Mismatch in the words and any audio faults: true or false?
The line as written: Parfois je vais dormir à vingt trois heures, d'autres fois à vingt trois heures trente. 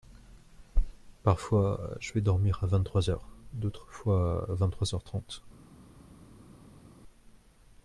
false